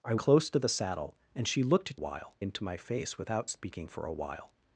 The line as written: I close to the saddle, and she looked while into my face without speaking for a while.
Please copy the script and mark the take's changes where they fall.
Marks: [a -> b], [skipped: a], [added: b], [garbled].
I close to the saddle, and she looked while into my face without speaking for a while.